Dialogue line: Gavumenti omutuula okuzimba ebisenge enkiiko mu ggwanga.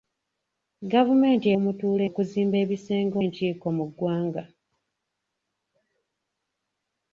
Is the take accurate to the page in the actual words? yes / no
yes